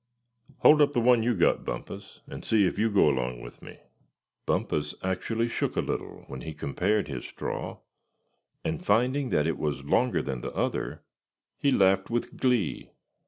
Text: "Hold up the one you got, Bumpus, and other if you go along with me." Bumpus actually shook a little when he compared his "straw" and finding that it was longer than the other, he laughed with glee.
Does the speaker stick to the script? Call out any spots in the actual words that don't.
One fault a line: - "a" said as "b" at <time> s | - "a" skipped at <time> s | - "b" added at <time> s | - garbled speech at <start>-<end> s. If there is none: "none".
- "other" said as "see" at 2.4 s